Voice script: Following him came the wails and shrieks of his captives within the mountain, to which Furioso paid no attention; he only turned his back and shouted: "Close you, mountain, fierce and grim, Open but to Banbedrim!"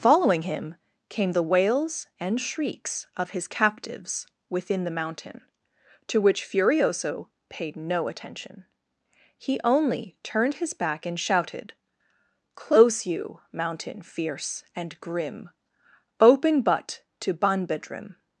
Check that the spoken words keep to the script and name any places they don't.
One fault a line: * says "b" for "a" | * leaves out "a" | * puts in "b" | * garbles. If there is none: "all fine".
all fine